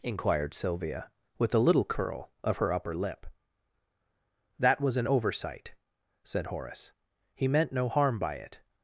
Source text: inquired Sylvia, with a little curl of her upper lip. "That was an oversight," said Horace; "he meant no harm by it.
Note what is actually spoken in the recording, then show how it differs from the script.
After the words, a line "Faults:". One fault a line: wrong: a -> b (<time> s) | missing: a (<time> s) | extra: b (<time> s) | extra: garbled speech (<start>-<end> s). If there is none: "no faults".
inquired Sylvia, with a little curl of her upper lip. "That was an oversight," said Horace; "he meant no harm by it.
Faults:
no faults